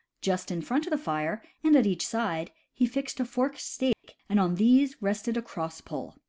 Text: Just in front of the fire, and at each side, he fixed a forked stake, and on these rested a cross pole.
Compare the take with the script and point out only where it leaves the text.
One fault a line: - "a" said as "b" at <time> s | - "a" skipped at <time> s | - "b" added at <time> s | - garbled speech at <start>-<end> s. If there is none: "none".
none